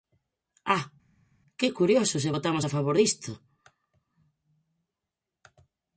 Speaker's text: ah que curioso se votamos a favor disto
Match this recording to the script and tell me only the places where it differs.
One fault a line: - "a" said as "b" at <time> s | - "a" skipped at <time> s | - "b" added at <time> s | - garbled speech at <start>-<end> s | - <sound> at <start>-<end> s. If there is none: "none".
none